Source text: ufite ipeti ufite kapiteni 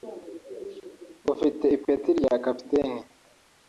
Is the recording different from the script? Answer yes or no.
yes